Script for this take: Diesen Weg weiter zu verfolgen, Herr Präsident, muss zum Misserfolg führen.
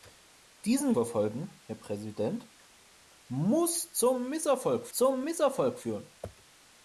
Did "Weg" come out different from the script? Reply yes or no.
yes